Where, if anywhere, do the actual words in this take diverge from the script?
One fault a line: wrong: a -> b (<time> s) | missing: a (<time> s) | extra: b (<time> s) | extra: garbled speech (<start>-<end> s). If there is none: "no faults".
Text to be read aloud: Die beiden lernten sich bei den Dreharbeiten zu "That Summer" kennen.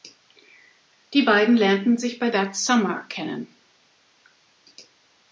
missing: den Dreharbeiten zu (2.3 s)